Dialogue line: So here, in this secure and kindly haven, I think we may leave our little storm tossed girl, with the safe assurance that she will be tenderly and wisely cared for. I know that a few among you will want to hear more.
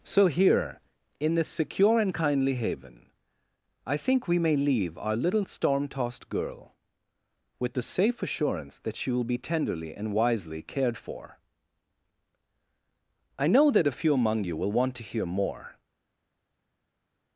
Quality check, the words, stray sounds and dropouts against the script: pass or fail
pass